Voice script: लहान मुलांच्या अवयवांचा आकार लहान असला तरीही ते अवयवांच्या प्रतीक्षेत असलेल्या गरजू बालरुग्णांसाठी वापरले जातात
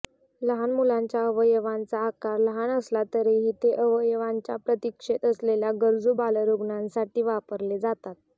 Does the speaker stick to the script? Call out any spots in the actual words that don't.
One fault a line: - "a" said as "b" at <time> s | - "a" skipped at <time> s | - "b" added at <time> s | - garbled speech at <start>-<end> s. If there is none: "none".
none